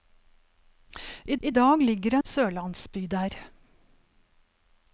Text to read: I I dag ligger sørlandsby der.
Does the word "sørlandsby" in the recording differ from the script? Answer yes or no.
no